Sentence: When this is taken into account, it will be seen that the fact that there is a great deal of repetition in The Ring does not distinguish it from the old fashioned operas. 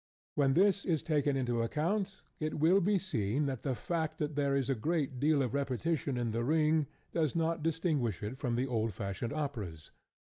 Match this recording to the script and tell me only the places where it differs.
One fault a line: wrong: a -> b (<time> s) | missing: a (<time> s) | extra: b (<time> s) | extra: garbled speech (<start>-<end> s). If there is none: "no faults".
no faults